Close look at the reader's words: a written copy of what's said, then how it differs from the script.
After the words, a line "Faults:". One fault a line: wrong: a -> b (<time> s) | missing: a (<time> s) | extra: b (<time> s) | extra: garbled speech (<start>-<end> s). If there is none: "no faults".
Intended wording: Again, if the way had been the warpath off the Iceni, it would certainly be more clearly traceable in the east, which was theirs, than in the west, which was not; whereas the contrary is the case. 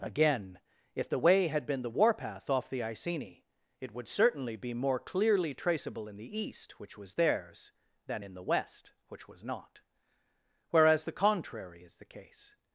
Again, if the way had been the warpath off the Iceni, it would certainly be more clearly traceable in the east, which was theirs, than in the west, which was not; whereas the contrary is the case.
Faults:
no faults